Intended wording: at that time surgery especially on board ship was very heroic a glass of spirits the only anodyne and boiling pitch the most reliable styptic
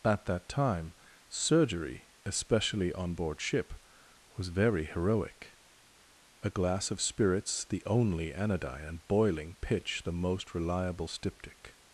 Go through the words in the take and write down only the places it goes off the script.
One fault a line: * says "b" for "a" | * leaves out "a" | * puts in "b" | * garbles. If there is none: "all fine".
all fine